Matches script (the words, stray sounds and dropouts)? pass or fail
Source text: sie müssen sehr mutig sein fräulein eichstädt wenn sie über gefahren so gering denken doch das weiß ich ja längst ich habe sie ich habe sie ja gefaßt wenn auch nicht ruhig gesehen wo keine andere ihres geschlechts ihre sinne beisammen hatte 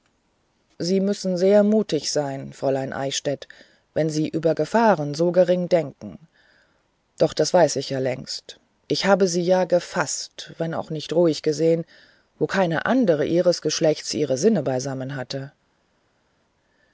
fail